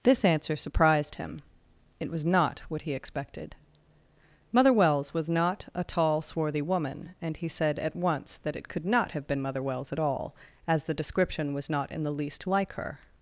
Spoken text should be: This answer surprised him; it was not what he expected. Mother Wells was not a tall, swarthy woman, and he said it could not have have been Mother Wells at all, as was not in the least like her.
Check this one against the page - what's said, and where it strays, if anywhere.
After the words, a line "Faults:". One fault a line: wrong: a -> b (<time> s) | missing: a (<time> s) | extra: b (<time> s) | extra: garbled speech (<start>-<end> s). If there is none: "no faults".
This answer surprised him; it was not what he expected. Mother Wells was not a tall, swarthy woman, and he said at once that it could not have been Mother Wells at all, as the description was not in the least like her.
Faults:
extra: at once that (7.8 s)
missing: have (9.3 s)
extra: the description (10.8 s)